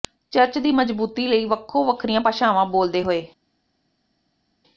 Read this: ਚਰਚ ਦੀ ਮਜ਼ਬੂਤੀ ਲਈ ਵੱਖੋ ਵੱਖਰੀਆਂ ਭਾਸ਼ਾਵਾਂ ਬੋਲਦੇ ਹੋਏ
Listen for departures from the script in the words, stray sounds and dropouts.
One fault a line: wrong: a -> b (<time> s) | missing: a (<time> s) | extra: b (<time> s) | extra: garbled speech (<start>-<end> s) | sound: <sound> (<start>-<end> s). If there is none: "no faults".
no faults